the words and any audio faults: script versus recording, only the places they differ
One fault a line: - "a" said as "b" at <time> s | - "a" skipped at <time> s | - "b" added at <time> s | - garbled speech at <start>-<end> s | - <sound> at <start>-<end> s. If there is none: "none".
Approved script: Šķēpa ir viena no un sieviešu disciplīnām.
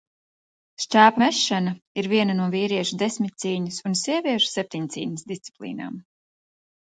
- "mešana" added at 1.2 s
- "vīriešu desmitcīņas" added at 2.5 s
- "septiņcīņas" added at 4.6 s